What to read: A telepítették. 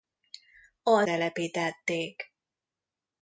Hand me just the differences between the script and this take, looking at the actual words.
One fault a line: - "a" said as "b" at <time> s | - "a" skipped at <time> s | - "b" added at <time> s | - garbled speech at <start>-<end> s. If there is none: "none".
none